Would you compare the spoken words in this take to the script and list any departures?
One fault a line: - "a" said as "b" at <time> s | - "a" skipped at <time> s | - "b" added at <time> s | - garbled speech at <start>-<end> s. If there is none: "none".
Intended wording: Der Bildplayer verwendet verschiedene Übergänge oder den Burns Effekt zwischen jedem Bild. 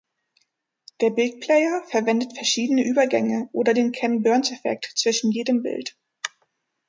- "Ken" added at 3.9 s